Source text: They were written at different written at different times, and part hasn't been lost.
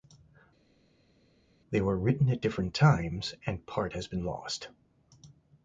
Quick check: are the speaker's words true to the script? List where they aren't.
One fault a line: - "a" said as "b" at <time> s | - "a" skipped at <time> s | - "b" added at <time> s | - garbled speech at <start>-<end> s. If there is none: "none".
- "written at different" skipped at 2.7 s
- "hasn't" said as "has" at 3.9 s